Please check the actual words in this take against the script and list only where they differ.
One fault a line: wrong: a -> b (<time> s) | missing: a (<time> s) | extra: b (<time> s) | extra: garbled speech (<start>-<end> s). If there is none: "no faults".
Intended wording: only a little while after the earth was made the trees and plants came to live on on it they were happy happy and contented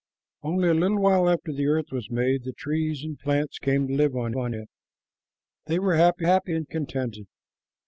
no faults